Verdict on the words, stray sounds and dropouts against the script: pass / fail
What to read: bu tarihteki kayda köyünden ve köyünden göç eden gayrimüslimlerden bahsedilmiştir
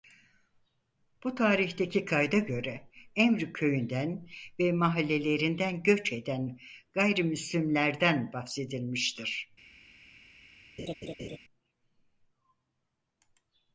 fail